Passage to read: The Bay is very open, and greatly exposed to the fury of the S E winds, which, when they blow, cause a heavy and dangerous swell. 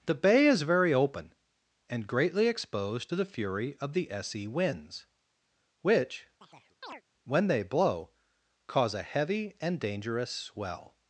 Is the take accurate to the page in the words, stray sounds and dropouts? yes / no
no